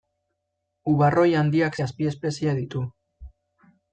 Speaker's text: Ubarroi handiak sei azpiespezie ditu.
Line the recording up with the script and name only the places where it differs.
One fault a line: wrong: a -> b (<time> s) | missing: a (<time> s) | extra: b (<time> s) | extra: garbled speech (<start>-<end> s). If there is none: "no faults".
missing: sei (1.8 s)